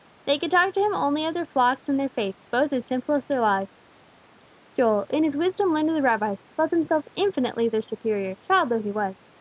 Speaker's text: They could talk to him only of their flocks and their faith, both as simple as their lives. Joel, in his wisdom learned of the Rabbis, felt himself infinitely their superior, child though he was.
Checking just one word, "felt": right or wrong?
right